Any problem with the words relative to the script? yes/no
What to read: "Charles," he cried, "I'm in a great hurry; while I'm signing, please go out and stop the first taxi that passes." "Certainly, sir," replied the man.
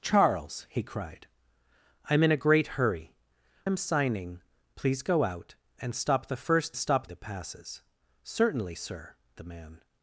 yes